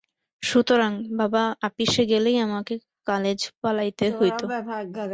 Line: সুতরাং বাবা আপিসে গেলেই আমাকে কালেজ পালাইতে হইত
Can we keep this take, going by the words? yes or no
yes